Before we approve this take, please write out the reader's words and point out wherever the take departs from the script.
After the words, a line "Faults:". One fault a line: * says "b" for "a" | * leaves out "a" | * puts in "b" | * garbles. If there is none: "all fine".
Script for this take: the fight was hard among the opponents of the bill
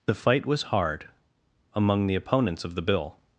the fight was hard among the opponents of the bill
Faults:
all fine